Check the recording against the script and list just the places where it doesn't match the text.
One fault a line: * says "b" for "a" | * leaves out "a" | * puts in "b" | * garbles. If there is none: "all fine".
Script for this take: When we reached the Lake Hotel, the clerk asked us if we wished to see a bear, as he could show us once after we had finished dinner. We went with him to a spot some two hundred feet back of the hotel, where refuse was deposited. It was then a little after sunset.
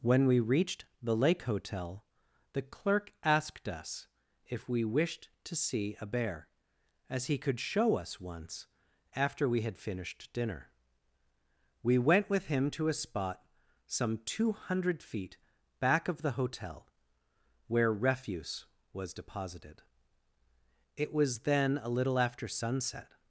all fine